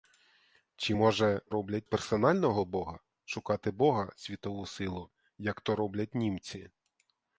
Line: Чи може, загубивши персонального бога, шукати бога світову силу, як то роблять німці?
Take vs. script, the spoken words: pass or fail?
fail